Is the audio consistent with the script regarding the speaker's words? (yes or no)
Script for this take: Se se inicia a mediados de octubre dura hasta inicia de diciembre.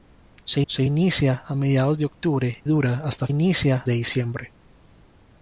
yes